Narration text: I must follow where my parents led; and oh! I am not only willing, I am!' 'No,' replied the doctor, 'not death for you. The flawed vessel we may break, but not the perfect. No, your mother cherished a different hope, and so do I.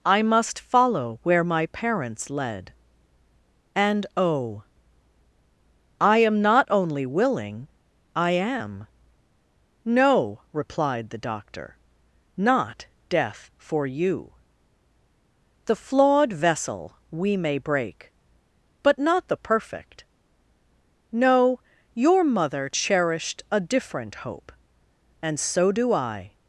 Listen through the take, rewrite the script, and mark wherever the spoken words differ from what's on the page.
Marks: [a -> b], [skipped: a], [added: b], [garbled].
I must follow where my parents led; and oh! I am not only willing, I am!' 'No,' replied the doctor, 'not death for you. The flawed vessel we may break, but not the perfect. No, your mother cherished a different hope, and so do I.